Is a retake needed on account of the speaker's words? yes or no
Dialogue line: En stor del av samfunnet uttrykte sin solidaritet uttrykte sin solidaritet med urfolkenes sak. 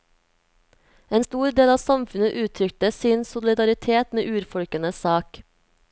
yes